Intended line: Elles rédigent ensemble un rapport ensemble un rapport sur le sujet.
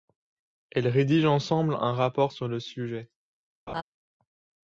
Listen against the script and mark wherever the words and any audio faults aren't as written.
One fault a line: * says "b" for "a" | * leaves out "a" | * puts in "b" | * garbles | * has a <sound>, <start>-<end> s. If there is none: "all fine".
* leaves out "ensemble un rapport"
* has a laugh, 3.7-3.8 s